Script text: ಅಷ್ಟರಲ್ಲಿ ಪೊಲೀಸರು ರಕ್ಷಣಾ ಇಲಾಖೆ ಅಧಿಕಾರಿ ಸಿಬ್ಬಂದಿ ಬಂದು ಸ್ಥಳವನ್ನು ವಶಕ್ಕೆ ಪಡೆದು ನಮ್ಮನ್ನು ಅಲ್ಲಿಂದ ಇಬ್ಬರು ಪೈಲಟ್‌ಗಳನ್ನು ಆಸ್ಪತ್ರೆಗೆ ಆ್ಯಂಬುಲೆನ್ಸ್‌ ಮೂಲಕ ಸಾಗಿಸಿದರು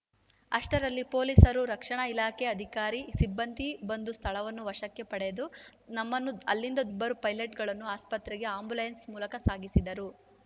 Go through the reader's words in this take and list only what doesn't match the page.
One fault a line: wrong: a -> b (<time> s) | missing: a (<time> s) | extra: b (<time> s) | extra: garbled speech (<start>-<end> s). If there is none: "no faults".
no faults